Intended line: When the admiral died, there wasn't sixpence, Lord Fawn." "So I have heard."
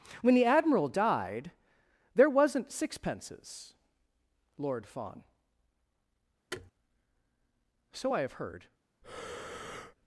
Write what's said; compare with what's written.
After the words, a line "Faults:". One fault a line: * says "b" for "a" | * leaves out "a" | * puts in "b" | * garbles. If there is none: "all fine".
When the admiral died, there wasn't sixpences, Lord Fawn." "So I have heard."
Faults:
* says "sixpences" for "sixpence"